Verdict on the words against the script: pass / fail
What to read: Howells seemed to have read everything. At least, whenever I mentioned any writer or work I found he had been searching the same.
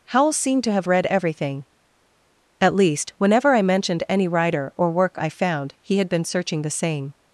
pass